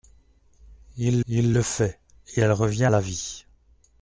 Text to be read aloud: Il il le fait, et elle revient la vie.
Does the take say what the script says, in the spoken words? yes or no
yes